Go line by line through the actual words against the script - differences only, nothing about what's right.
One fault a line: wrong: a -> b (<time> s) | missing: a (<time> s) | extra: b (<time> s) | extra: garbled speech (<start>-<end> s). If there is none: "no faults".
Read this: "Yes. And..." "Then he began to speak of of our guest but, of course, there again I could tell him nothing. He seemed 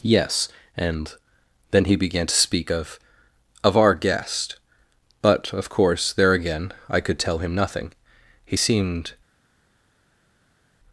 no faults